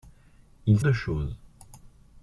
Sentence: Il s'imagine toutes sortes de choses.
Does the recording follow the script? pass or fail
fail